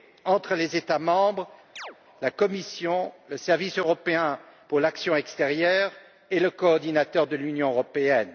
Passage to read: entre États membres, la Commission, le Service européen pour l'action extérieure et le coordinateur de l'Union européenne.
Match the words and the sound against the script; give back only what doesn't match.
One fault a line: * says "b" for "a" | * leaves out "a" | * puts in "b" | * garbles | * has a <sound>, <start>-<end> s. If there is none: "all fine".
* puts in "les"
* has a chirp, 1.8-2.0 s